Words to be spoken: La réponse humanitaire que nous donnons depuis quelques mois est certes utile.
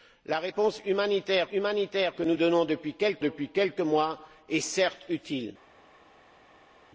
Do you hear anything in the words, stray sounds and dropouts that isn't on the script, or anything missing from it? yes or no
yes